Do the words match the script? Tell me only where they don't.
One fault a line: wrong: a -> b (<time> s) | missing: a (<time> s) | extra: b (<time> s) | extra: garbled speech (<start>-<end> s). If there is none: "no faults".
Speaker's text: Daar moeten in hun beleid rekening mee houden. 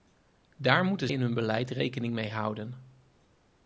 no faults